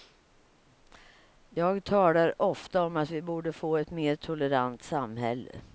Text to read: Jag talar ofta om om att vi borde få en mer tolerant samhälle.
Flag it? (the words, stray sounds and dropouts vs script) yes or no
yes